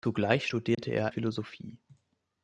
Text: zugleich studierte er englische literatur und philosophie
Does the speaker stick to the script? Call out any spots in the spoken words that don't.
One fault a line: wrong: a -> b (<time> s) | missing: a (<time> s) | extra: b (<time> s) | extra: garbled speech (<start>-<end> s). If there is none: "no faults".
missing: englische literatur und (1.1 s)